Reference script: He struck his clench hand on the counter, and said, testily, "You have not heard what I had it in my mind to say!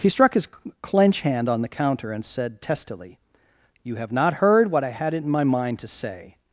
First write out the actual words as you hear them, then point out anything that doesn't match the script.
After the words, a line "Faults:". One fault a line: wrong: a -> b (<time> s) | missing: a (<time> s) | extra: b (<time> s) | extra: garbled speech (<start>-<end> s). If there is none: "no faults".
He struck his clench hand on the counter, and said, testily, "You have not heard what I had it in my mind to say!
Faults:
no faults